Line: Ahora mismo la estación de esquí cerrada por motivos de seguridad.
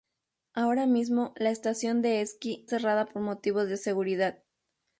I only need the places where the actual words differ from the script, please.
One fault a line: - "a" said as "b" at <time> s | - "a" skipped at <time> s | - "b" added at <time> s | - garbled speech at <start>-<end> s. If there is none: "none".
none